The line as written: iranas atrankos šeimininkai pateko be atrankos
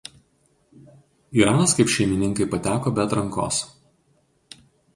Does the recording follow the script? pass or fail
fail